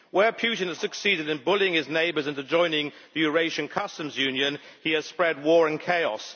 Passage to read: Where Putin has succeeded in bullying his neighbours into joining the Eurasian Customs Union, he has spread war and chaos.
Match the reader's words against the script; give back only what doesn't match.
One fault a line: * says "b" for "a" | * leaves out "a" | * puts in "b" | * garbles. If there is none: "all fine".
all fine